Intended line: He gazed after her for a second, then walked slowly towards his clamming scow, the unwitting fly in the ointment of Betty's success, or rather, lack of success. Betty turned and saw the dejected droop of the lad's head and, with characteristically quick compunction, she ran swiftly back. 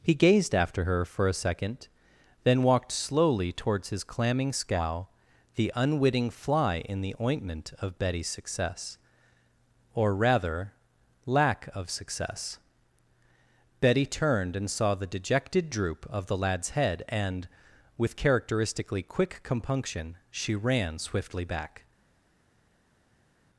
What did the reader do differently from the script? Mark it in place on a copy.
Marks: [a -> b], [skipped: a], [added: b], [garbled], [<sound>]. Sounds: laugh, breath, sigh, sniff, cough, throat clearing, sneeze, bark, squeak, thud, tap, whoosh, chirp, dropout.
He gazed after her for a second, then walked slowly towards his clamming scow, the unwitting fly in the ointment of Betty's success, or rather, lack of success. Betty turned and saw the dejected droop of the lad's head and, with characteristically quick compunction, she ran swiftly back.